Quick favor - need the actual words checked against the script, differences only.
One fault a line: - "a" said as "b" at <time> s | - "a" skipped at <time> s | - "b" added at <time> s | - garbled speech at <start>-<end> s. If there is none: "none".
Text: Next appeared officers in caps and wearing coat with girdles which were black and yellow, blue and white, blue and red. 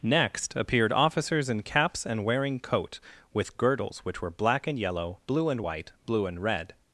none